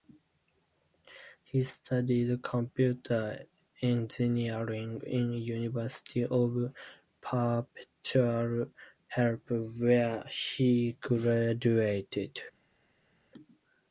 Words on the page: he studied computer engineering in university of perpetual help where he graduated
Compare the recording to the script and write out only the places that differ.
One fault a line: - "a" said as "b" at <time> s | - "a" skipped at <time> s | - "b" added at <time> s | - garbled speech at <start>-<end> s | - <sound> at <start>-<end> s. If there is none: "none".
none